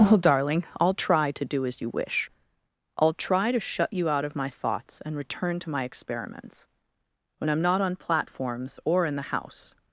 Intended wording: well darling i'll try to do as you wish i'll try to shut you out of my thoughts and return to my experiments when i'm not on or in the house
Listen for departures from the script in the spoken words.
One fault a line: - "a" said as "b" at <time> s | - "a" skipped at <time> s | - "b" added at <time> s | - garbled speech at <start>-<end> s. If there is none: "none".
- "platforms" added at 8.0 s